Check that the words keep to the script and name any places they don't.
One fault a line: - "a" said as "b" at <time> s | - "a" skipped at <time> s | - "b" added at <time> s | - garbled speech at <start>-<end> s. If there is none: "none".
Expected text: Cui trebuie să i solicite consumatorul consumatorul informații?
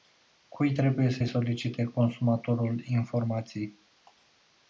- "consumatorul" skipped at 2.8 s